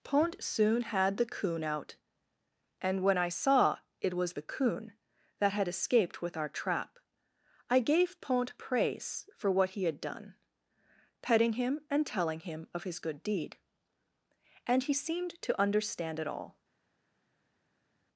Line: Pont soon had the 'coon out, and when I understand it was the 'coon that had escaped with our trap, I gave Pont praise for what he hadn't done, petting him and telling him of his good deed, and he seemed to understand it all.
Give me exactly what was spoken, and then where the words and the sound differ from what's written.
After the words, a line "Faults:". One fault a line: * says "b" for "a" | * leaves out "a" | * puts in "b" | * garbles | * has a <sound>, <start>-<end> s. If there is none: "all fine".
Pont soon had the 'coon out, and when I saw it was the 'coon that had escaped with our trap, I gave Pont praise for what he had done, petting him and telling him of his good deed, and he seemed to understand it all.
Faults:
* says "saw" for "understand"
* says "had" for "hadn't"